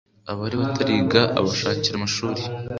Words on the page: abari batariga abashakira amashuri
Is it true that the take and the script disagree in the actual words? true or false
false